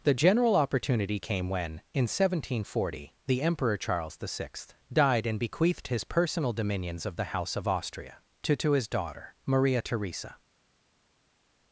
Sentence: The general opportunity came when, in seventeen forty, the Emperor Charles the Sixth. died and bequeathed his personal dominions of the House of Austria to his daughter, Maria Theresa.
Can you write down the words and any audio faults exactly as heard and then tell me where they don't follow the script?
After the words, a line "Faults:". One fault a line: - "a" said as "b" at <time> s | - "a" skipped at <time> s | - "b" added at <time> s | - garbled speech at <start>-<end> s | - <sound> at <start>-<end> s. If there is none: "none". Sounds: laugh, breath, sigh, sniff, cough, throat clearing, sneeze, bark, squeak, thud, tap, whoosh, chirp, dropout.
The general opportunity came when, in seventeen forty, the Emperor Charles the Sixth. died and bequeathed his personal dominions of the House of Austria to to his daughter, Maria Theresa.
Faults:
- "to" added at 8.5 s